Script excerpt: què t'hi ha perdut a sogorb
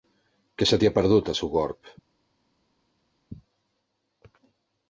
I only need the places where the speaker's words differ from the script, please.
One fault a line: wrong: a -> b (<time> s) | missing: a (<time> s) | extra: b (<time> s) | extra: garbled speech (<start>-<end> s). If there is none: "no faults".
extra: se (0.7 s)